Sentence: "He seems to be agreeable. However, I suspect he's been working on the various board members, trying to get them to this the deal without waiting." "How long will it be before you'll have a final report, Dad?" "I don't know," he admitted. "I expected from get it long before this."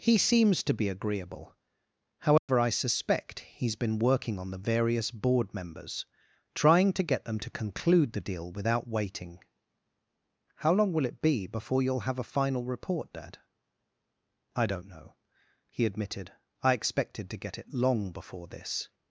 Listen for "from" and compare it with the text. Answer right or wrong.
wrong